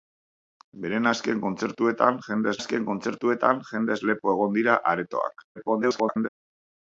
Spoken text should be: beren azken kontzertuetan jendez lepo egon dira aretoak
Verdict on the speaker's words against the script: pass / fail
fail